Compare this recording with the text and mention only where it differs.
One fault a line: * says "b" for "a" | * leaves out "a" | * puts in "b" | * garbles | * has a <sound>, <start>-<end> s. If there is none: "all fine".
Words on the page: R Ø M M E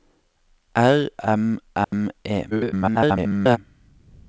* leaves out "Ø"
* has a dropout, 1.8-1.9 s
* garbles